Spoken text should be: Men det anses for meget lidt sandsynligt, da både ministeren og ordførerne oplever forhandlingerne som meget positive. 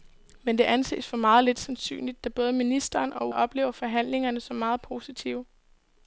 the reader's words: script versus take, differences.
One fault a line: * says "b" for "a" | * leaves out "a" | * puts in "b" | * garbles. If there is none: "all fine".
* leaves out "ordførerne"